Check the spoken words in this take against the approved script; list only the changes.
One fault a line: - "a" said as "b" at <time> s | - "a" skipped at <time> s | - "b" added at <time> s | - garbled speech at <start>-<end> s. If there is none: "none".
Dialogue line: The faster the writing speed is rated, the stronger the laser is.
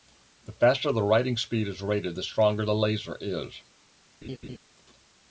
none